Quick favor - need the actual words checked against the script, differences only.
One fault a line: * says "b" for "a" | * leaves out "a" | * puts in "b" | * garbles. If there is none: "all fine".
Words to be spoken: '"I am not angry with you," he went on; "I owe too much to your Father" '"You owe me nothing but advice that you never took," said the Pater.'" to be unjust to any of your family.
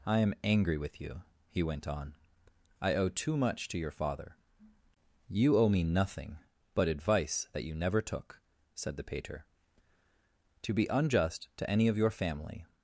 * leaves out "not"